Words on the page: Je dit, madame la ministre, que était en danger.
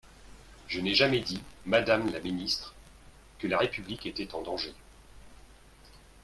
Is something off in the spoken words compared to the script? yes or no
yes